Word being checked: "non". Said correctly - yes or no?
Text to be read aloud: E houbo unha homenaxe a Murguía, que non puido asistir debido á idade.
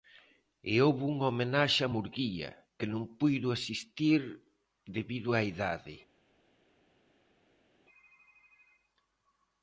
yes